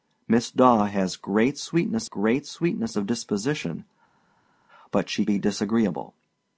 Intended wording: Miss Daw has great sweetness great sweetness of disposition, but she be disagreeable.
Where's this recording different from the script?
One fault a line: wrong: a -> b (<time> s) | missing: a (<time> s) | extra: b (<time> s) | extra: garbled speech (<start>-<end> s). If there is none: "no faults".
no faults